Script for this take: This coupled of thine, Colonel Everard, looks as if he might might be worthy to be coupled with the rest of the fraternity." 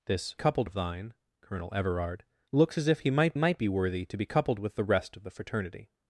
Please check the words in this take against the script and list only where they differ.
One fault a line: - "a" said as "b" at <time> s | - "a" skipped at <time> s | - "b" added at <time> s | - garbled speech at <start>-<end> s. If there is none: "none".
none